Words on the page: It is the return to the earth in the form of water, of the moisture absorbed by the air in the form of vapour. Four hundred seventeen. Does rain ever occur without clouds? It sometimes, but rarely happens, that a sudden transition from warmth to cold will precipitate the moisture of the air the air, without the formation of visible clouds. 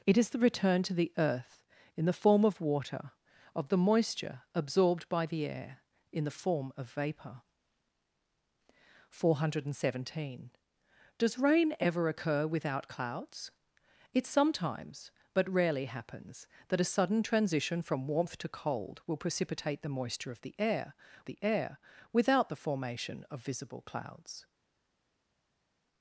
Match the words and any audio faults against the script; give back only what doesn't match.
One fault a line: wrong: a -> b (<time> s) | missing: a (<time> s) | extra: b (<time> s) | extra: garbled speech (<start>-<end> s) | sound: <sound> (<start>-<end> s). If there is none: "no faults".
no faults